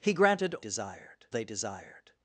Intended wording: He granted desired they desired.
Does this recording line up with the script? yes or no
yes